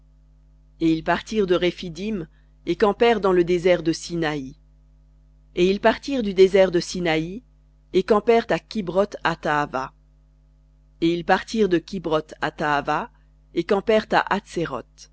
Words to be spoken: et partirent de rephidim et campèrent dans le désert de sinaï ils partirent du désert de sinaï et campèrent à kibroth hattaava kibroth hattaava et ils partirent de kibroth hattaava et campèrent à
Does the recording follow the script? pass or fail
fail